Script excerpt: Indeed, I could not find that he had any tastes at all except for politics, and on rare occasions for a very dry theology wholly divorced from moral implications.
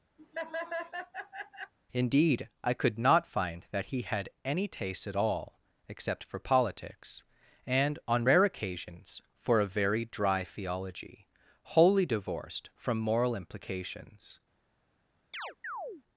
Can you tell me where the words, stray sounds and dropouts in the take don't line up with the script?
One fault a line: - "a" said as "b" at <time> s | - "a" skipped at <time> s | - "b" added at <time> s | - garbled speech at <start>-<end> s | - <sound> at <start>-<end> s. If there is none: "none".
- laugh at 0.2-1.7 s
- "tastes" said as "taste" at 4.7 s
- chirp at 15.3-16.0 s